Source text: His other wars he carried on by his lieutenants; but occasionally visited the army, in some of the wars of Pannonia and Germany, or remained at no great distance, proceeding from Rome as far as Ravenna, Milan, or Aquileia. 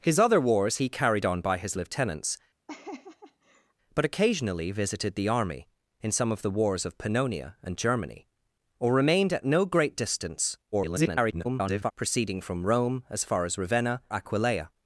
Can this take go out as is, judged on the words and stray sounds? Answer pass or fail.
fail